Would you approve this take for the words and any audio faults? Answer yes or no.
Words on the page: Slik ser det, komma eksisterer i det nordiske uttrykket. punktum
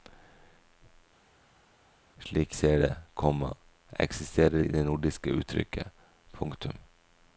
yes